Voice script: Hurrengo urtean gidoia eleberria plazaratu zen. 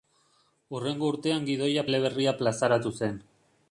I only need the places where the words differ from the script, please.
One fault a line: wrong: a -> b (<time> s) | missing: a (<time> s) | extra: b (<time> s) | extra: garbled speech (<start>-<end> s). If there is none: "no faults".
no faults